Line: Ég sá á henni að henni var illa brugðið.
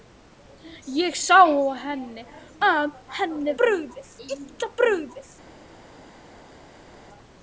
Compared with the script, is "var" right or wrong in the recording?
wrong